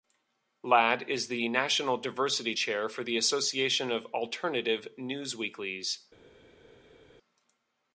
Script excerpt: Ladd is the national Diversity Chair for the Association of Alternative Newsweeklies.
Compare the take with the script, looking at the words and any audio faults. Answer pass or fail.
pass